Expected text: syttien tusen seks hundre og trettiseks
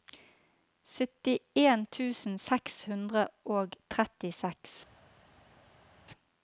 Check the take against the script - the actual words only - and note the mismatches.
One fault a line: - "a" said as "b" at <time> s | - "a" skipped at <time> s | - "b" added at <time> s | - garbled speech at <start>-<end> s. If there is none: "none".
none